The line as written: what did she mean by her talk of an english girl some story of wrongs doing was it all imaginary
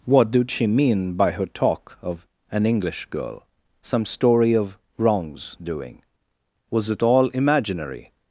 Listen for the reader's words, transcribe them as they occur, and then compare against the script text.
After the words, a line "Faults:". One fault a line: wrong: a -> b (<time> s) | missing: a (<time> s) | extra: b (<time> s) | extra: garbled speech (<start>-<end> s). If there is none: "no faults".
what did she mean by her talk of an english girl some story of wrongs doing was it all imaginary
Faults:
no faults